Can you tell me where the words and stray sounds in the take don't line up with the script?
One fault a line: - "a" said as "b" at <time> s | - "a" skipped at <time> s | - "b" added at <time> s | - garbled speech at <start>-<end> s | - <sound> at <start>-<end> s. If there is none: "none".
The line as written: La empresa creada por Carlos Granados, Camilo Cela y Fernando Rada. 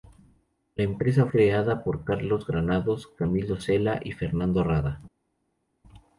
none